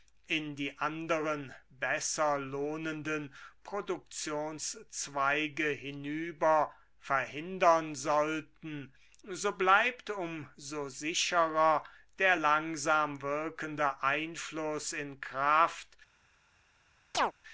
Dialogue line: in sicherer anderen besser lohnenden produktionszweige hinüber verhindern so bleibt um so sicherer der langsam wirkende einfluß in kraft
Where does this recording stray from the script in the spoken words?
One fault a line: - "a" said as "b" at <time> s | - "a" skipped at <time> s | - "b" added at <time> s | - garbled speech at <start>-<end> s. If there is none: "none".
- "sicherer" said as "die" at 0.6 s
- "sollten" added at 7.9 s